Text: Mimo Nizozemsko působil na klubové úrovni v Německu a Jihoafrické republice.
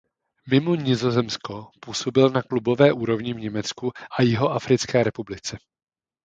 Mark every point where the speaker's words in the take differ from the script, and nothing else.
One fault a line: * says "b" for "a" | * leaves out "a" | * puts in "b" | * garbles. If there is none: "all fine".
all fine